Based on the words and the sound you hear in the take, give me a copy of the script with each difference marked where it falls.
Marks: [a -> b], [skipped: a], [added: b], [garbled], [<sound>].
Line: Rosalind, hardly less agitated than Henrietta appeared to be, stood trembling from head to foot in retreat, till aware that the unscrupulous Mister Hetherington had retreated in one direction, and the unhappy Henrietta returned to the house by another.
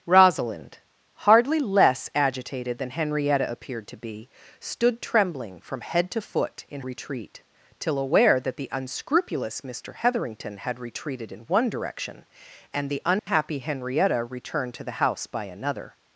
Rosalind, hardly less agitated than Henrietta appeared to be, stood trembling from head to foot in retreat, till aware that the unscrupulous Mister Hetherington had retreated in one direction, and the unhappy [dropout] Henrietta returned to the house by another.